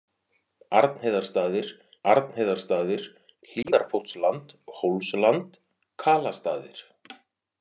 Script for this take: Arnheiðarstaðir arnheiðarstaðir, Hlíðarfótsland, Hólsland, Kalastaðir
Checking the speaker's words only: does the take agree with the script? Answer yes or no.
yes